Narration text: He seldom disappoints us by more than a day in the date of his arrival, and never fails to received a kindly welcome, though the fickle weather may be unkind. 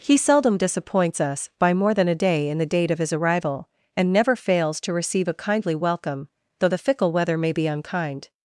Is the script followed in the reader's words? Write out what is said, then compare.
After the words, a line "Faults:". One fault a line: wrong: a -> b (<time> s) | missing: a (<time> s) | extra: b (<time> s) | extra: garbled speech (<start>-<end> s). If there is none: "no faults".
He seldom disappoints us by more than a day in the date of his arrival, and never fails to receive a kindly welcome, though the fickle weather may be unkind.
Faults:
wrong: received -> receive (4.9 s)